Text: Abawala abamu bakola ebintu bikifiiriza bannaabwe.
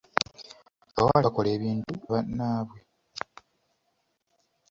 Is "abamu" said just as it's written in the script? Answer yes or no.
no